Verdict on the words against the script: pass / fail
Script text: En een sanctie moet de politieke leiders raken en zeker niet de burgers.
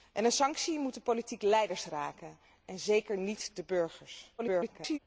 fail